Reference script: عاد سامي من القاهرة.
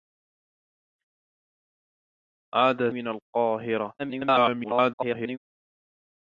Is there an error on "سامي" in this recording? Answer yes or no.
yes